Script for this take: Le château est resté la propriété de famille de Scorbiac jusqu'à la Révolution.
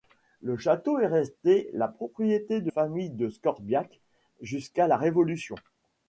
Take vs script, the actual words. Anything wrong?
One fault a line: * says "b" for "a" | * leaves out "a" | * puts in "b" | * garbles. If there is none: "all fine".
all fine